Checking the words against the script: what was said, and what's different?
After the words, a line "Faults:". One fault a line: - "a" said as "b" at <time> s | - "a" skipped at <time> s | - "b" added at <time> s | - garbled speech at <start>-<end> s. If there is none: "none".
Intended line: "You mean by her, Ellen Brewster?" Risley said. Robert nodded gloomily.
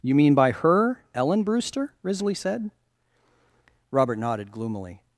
"You mean by her, Ellen Brewster?" Risley said. Robert nodded gloomily.
Faults:
none